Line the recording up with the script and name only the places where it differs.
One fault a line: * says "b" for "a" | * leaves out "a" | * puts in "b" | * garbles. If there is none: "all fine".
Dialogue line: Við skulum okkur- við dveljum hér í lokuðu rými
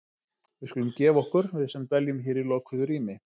* puts in "gefa"
* puts in "sem"